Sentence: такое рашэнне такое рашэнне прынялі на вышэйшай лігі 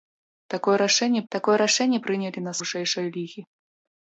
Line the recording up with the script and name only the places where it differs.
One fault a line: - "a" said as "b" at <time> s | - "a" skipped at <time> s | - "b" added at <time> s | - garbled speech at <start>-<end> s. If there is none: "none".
none